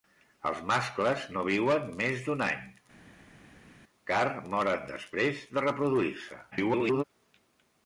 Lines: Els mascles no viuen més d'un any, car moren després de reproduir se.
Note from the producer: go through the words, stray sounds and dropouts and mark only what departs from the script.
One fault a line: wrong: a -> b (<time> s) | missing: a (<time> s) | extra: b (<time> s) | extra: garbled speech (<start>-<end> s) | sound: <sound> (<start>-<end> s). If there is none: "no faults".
extra: garbled speech (6.5-7.0 s)